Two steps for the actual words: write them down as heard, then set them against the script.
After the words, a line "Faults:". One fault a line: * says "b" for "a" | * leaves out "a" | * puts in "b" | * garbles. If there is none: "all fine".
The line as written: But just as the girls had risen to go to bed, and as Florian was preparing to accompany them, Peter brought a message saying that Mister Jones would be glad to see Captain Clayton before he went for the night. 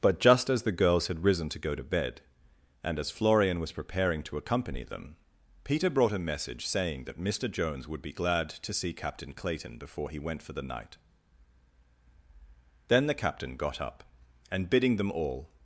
But just as the girls had risen to go to bed, and as Florian was preparing to accompany them, Peter brought a message saying that Mister Jones would be glad to see Captain Clayton before he went for the night. Then the Captain got up, and bidding them all
Faults:
* puts in "Then the Captain got up and bidding them all"